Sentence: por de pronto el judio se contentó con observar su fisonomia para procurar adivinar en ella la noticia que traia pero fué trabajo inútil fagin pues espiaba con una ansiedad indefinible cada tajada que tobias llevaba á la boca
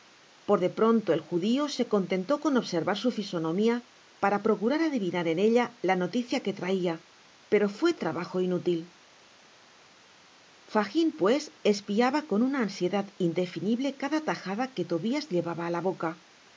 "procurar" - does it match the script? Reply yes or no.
yes